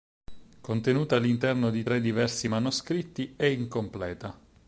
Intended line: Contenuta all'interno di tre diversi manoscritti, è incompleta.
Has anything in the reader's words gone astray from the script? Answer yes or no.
no